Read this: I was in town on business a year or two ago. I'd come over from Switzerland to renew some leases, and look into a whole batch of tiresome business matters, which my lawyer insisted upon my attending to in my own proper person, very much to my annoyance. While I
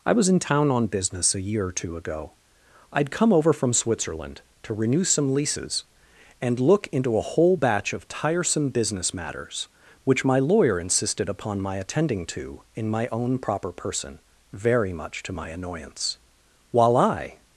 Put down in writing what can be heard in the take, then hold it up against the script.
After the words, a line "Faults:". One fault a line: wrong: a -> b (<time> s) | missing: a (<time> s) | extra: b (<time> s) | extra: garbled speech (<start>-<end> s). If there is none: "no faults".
I was in town on business a year or two ago. I'd come over from Switzerland to renew some leases, and look into a whole batch of tiresome business matters, which my lawyer insisted upon my attending to in my own proper person, very much to my annoyance. While I
Faults:
no faults